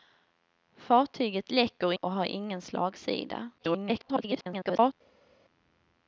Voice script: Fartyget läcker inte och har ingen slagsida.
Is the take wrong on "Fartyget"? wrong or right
right